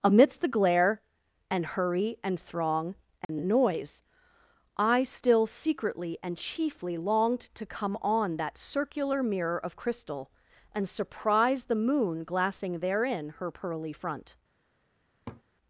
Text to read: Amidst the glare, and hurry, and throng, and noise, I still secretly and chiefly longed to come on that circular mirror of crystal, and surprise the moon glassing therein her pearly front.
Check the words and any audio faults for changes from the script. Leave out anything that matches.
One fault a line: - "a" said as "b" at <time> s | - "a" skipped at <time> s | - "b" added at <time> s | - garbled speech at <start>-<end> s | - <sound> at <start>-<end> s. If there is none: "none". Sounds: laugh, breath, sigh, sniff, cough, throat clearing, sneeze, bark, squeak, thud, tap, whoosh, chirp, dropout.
- dropout at 3.2-3.3 s
- laugh at 15.3-15.4 s